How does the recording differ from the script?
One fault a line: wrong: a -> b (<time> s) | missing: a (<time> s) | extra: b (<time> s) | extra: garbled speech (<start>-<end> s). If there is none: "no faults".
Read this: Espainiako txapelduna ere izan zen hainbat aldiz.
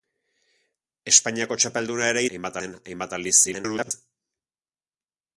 wrong: izan -> hainbat (2.3 s)
extra: garbled speech (3.4-3.9 s)